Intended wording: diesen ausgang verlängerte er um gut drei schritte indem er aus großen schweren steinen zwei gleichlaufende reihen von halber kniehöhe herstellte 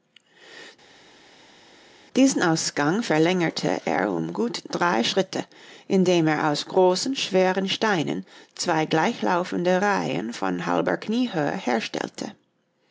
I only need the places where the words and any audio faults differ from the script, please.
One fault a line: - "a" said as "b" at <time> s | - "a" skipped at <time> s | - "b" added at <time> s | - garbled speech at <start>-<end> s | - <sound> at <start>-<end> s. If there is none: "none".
none